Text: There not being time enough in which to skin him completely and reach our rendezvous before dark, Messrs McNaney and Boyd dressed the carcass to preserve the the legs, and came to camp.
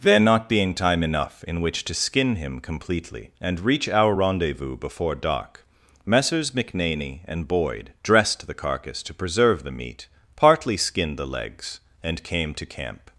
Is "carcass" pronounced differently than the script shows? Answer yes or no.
no